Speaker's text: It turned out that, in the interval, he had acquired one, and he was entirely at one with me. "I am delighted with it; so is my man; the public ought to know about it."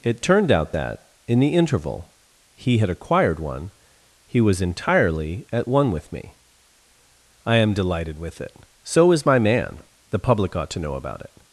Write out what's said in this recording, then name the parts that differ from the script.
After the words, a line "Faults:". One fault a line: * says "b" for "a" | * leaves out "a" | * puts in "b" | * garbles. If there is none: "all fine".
It turned out that, in the interval, he had acquired one, he was entirely at one with me. "I am delighted with it; so is my man; the public ought to know about it."
Faults:
* leaves out "and"